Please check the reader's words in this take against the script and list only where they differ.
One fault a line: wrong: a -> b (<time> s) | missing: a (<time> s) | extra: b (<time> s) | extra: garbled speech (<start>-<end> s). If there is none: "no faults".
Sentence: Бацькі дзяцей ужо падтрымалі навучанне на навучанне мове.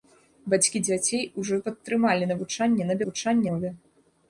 no faults